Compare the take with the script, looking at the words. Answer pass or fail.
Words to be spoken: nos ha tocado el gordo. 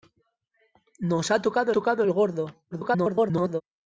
fail